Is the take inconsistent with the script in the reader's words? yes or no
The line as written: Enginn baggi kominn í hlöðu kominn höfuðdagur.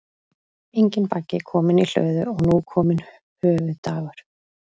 yes